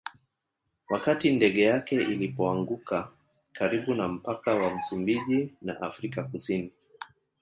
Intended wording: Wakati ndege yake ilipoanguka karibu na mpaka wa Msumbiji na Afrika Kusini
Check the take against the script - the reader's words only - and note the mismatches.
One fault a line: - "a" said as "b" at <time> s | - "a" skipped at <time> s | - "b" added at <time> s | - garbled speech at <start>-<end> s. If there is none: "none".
none